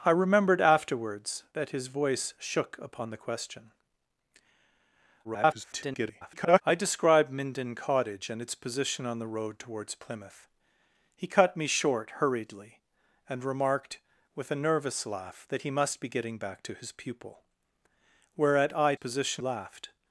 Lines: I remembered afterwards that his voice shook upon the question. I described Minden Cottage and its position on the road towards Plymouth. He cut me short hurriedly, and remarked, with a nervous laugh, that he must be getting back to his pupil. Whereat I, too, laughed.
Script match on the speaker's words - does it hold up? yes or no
no